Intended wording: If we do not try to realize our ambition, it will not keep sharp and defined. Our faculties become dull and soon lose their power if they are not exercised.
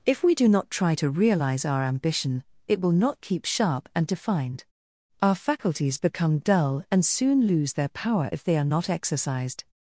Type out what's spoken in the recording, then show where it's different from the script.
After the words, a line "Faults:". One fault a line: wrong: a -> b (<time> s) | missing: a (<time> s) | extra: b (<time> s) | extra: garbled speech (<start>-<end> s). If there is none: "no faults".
If we do not try to realize our ambition, it will not keep sharp and defined. Our faculties become dull and soon lose their power if they are not exercised.
Faults:
no faults